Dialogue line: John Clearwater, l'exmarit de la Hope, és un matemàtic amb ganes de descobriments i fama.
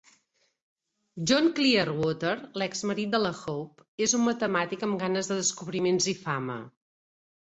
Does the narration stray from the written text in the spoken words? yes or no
no